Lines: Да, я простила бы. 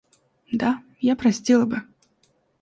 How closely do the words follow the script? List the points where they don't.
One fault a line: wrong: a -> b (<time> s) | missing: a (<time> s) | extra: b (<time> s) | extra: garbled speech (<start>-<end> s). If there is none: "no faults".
no faults